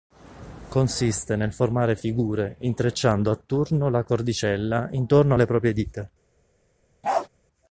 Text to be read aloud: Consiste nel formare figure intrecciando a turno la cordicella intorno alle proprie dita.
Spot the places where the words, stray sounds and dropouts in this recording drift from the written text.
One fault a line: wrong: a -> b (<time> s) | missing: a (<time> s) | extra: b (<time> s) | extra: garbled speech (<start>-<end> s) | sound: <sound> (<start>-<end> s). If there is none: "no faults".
sound: bark (7.0-7.3 s)